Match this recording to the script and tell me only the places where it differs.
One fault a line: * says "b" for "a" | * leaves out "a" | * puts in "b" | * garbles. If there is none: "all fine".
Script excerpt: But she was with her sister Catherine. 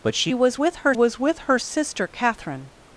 * puts in "was with her"